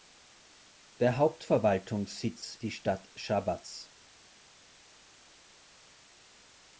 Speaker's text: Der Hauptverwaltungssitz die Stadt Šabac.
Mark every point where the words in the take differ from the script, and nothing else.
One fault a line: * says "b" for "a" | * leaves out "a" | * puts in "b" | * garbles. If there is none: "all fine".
all fine